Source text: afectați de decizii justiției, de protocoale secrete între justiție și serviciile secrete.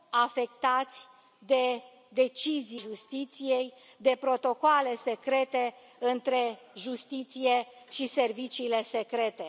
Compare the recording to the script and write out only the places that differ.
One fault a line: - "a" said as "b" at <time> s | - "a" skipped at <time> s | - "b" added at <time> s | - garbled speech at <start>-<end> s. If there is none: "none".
none